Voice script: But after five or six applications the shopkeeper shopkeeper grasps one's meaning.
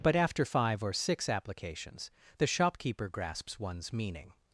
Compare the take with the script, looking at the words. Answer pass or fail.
fail